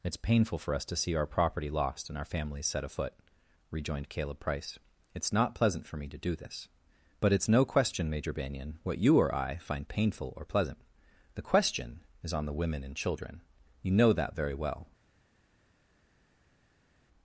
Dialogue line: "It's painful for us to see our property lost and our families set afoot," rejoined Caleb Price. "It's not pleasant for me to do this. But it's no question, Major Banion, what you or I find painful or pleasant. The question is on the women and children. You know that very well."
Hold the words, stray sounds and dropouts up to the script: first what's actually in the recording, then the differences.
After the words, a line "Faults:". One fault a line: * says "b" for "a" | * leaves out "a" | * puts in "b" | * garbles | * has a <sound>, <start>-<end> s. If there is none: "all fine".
"It's painful for us to see our property lost and our families set afoot," rejoined Caleb Price. "It's not pleasant for me to do this. But it's no question, Major Banion, what you or I find painful or pleasant. The question is on the women and children. You know that very well."
Faults:
all fine